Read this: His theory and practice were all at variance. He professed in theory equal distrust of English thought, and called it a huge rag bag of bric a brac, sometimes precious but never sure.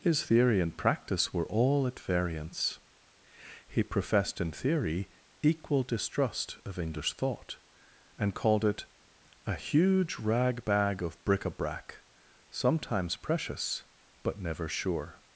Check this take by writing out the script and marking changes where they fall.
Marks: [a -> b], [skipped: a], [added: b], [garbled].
His theory and practice were all at variance. He professed in theory equal distrust of English thought, and called it a huge rag bag of bric a brac, sometimes precious but never sure.